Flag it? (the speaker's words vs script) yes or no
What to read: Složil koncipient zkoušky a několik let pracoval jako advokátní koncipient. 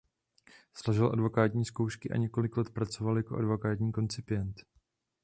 yes